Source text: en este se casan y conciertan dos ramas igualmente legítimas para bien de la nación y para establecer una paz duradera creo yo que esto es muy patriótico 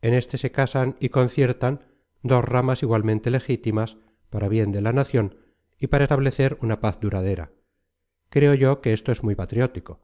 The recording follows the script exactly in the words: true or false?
true